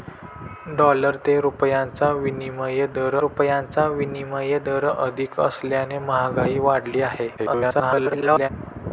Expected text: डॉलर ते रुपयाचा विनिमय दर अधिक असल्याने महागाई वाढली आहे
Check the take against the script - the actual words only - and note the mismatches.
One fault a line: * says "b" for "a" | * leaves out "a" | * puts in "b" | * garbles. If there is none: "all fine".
* puts in "रुपयाचा विनिमय दर"
* garbles